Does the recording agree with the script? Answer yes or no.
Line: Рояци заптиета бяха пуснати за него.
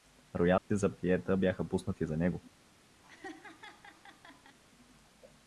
yes